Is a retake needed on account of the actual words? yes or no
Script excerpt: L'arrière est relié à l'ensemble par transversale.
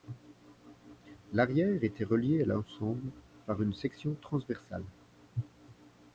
yes